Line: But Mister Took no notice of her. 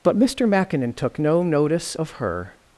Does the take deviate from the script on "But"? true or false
false